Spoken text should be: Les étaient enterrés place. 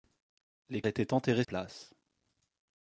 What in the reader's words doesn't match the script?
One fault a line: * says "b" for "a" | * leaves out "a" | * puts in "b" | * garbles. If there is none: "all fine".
all fine